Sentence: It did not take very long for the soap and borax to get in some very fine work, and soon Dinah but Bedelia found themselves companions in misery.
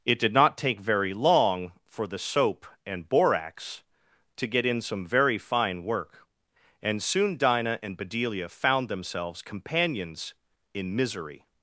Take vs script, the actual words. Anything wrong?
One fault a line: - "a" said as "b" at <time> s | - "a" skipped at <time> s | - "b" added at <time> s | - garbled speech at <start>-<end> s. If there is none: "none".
- "but" said as "and" at 7.8 s